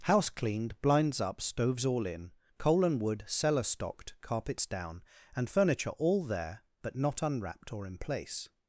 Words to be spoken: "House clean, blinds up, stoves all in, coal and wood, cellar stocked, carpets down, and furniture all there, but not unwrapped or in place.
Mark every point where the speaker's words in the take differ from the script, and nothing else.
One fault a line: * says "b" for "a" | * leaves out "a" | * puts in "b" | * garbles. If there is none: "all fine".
* says "cleaned" for "clean"